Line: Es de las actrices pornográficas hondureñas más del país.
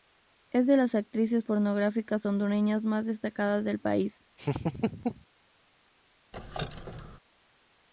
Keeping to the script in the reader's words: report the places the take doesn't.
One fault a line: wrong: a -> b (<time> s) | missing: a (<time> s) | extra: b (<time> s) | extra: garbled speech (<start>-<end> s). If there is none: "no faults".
extra: destacadas (3.1 s)